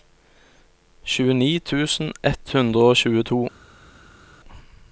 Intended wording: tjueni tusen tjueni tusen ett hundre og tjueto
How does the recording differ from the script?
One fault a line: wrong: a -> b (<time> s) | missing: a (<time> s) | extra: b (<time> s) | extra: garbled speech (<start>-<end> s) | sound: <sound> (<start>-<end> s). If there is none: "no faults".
missing: tjueni tusen (2.1 s)